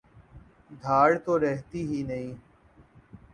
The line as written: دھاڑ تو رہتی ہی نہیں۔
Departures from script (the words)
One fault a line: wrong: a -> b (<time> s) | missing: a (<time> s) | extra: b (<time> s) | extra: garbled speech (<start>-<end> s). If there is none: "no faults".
no faults